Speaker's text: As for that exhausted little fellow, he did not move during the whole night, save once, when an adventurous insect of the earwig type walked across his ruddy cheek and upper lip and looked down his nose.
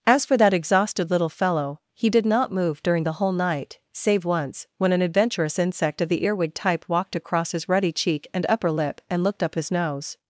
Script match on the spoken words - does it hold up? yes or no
no